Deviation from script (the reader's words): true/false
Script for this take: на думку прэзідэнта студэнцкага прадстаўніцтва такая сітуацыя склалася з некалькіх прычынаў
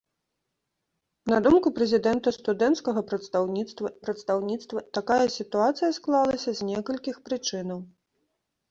true